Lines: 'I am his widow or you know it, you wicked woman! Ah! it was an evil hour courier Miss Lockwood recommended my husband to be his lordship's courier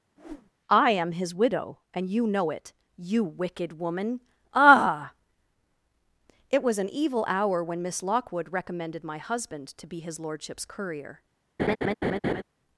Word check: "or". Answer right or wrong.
wrong